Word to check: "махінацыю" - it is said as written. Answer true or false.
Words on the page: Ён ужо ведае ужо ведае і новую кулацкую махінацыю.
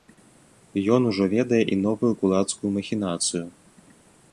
true